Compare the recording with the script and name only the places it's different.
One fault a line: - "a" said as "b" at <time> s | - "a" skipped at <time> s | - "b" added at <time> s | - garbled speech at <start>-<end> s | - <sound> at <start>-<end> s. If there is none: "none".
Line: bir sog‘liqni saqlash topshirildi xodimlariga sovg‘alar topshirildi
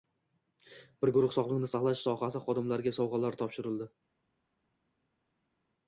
- "guruh" added at 1.2 s
- "topshirildi" said as "sohasi" at 2.1 s